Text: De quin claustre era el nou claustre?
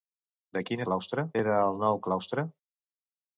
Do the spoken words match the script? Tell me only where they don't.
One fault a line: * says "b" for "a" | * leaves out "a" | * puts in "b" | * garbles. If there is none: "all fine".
all fine